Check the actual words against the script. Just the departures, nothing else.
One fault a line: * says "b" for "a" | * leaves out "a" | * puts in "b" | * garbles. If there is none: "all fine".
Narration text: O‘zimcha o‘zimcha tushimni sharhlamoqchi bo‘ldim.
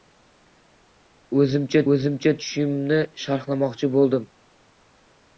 all fine